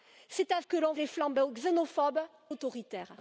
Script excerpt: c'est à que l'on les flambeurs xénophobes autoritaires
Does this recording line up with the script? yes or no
yes